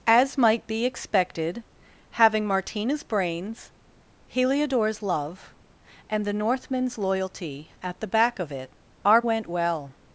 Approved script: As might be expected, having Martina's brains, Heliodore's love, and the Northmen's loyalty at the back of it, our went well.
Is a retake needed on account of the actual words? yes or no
no